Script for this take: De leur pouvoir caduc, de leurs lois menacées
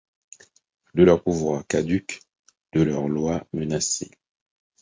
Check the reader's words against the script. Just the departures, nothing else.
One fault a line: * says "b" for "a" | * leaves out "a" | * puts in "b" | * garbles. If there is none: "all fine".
all fine